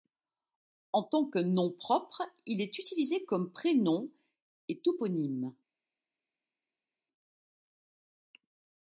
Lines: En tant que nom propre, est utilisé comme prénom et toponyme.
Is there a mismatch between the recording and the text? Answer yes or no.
yes